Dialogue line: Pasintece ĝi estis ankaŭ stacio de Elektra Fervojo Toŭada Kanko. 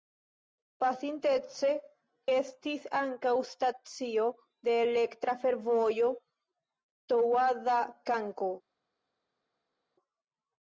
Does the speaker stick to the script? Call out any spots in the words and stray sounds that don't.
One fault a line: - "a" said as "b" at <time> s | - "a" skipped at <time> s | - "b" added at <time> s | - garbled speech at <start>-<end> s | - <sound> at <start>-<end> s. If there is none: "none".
- "ĝi" skipped at 1.7 s